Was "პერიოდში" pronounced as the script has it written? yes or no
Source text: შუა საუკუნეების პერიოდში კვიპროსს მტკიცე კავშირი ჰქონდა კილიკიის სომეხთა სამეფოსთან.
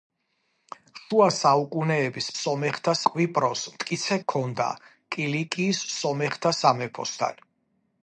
no